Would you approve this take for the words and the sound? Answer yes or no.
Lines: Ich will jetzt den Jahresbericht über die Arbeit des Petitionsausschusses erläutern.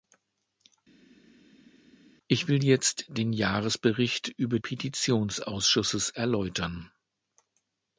no